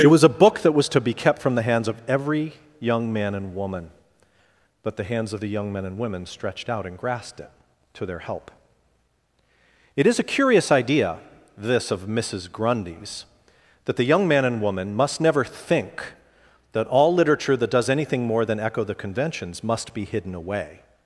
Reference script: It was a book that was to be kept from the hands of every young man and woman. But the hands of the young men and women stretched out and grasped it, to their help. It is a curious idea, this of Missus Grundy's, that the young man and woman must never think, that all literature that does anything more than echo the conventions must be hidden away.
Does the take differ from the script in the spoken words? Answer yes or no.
no